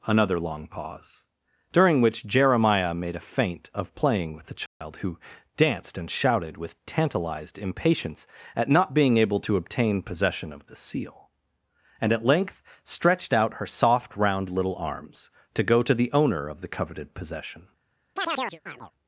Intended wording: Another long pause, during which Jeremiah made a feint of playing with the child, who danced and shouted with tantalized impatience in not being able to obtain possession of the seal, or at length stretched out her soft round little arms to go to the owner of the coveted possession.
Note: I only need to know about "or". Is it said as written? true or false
false